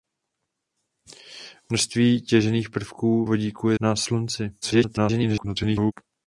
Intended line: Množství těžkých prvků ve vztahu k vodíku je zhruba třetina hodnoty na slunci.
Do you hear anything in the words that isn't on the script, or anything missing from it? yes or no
yes